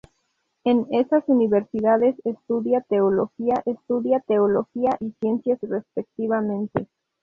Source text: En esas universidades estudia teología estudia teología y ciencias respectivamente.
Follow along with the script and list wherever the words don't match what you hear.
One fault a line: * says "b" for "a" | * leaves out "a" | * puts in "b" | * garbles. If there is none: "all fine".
all fine